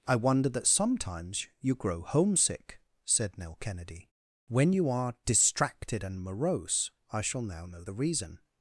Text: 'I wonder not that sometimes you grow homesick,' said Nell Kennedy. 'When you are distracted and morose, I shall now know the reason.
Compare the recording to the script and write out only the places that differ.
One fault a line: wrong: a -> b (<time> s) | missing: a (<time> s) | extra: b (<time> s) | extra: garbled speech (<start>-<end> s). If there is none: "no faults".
missing: not (0.5 s)